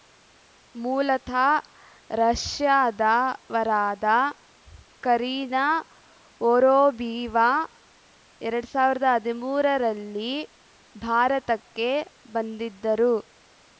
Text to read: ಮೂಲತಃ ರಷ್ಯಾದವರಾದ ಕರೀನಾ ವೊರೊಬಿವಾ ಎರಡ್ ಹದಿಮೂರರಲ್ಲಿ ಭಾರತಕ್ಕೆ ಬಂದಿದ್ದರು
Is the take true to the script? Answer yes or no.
no